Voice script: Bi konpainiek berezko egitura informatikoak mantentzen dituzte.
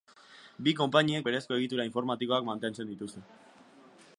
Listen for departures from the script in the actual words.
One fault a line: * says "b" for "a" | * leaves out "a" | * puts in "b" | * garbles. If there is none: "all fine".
all fine